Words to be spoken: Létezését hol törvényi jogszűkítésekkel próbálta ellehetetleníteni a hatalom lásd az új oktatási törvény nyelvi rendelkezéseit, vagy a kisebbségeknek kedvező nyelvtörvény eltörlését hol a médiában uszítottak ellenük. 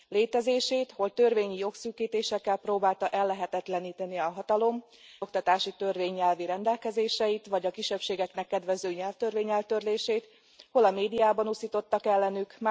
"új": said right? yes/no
no